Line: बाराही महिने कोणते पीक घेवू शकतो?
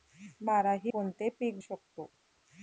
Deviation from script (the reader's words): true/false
true